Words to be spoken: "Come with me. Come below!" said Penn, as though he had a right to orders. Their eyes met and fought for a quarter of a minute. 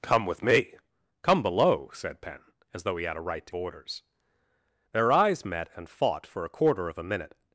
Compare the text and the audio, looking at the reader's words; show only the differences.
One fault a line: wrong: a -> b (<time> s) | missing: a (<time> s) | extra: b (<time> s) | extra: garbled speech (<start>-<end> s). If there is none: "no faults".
no faults